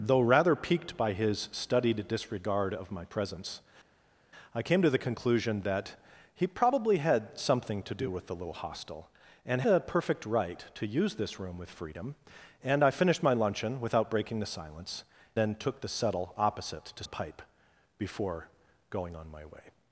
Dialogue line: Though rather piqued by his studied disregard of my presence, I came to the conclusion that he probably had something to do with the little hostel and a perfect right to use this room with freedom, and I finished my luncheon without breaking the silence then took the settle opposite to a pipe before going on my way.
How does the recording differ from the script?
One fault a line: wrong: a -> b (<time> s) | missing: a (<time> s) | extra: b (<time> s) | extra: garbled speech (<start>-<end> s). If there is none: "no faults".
no faults